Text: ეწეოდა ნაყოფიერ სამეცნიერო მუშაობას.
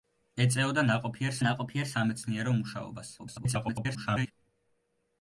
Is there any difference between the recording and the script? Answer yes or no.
yes